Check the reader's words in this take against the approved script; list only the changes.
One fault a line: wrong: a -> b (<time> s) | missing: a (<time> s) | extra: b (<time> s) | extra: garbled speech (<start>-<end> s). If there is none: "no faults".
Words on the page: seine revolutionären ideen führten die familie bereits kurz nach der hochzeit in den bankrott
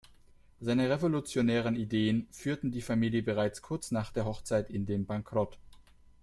no faults